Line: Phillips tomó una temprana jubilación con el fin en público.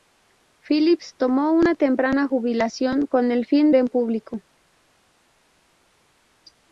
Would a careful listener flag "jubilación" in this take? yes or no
no